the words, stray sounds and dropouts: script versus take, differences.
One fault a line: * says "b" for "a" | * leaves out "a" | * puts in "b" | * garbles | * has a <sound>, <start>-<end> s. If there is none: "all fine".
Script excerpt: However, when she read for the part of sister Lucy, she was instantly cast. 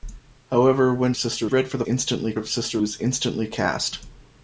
* says "sister" for "she"
* says "instantly" for "part"
* leaves out "Lucy she"